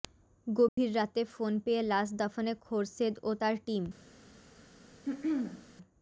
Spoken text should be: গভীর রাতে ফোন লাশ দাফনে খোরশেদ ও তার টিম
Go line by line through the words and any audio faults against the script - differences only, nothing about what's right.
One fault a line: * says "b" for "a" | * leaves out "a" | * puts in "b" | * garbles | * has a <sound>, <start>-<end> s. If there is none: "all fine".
* has a dropout, 0.7-0.8 s
* puts in "পেয়ে"
* has a throat clearing, 5.1-5.7 s